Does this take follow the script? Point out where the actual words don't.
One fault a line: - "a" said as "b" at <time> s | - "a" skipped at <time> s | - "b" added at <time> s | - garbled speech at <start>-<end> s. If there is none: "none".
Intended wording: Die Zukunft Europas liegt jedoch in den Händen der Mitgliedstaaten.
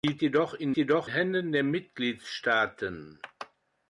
- "Zukunft Europas liegt" skipped at 0.2 s
- "den" said as "jedoch" at 0.8 s